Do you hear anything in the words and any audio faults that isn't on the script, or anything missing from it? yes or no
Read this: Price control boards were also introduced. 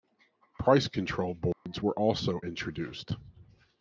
yes